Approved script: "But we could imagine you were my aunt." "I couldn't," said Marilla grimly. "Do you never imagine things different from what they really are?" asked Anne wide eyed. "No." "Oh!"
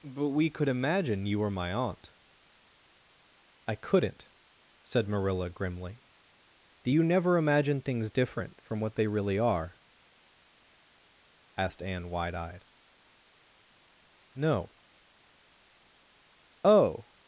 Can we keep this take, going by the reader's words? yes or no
yes